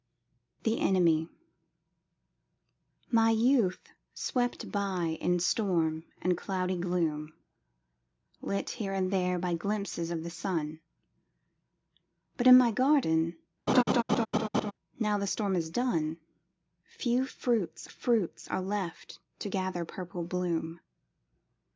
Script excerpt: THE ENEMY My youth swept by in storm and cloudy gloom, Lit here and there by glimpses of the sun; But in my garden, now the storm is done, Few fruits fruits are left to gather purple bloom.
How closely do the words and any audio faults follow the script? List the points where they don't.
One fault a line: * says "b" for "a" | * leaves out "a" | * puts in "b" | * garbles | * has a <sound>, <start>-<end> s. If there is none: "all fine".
* has a laugh, 13.7-14.7 s